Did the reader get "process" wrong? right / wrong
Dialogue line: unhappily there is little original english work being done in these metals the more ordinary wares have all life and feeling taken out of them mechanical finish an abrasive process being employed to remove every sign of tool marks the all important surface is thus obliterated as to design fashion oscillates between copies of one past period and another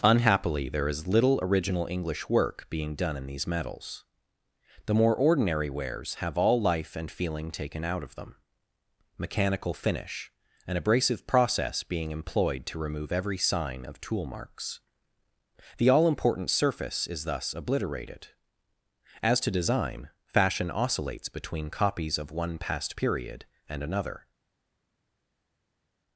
right